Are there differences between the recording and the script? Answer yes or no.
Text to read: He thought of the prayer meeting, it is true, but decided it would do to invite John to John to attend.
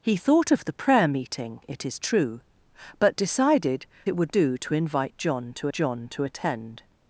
no